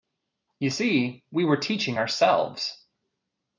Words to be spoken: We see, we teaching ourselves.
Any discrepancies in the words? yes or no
yes